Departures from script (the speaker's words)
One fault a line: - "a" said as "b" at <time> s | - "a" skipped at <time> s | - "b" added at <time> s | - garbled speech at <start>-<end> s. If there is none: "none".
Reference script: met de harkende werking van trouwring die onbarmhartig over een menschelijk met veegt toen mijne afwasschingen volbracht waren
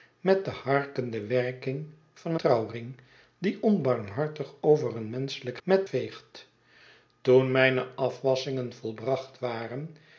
none